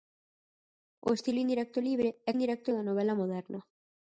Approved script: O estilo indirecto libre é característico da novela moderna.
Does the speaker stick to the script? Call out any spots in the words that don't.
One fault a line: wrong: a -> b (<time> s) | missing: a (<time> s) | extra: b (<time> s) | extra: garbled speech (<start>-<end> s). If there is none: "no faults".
wrong: característico -> indirecto (2.3 s)